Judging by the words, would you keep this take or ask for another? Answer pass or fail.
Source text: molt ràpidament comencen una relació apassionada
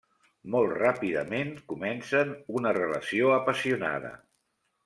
pass